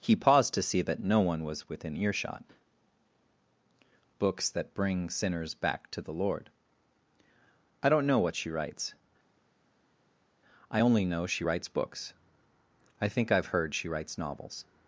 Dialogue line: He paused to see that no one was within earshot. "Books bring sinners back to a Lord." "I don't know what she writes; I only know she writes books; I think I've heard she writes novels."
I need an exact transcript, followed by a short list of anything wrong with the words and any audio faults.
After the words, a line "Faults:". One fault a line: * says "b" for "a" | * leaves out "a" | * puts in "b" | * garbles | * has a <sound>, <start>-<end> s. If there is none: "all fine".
He paused to see that no one was within earshot. "Books that bring sinners back to the Lord." "I don't know what she writes; I only know she writes books; I think I've heard she writes novels."
Faults:
* puts in "that"
* says "the" for "a"